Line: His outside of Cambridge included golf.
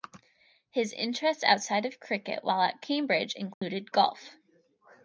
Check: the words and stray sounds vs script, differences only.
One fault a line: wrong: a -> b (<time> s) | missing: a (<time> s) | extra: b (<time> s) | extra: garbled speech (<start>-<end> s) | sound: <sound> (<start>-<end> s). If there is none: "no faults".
extra: interests (0.9 s)
extra: cricket while at (2.0 s)
sound: dropout (3.5-3.6 s)